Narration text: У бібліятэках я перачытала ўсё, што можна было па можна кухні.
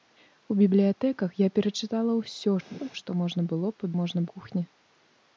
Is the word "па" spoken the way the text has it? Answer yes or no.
yes